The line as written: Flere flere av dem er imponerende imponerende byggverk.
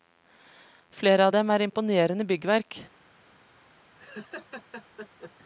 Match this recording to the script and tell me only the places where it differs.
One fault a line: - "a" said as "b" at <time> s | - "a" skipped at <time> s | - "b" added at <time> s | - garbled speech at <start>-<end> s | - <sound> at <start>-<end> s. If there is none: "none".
- "flere" skipped at 1.3 s
- "imponerende" skipped at 2.3 s
- laugh at 4.0-5.3 s